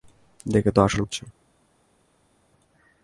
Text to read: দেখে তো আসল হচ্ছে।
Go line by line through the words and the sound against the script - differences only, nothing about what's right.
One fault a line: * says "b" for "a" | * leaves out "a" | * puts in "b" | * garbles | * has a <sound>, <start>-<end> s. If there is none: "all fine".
all fine